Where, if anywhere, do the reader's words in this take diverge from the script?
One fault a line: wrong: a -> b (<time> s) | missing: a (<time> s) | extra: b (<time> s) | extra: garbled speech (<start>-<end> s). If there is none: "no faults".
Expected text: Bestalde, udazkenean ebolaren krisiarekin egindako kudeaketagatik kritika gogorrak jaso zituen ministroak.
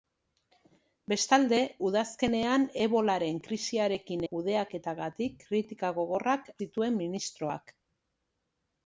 missing: egindako (4.2 s)
missing: jaso (6.5 s)